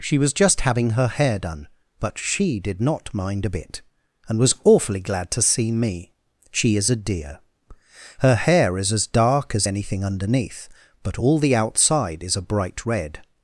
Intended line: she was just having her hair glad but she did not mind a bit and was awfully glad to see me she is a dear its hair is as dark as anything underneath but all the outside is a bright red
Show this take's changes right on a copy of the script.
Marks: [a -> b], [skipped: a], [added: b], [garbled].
she was just having her hair [glad -> done] but she did not mind a bit and was awfully glad to see me she is a dear [its -> her] hair is as dark as anything underneath but all the outside is a bright red